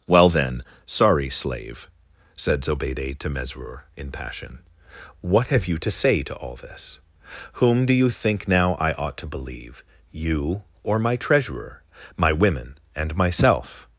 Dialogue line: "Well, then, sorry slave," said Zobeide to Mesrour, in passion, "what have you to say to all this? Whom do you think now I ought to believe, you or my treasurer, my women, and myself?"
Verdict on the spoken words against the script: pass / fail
pass